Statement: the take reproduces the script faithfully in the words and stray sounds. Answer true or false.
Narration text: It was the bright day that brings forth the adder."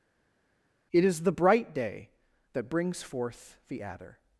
false